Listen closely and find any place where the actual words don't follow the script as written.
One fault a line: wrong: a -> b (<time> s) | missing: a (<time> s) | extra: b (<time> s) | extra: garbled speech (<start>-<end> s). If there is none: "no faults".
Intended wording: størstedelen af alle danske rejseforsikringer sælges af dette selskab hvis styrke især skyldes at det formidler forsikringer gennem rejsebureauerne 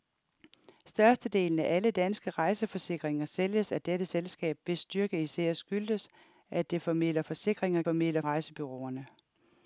wrong: gennem -> formidler (7.8 s)